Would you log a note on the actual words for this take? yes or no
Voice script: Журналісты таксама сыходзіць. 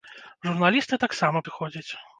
no